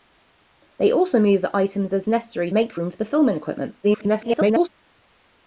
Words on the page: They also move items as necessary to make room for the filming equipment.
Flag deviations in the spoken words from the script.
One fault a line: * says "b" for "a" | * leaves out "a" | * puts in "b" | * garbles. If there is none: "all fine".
* leaves out "to"
* garbles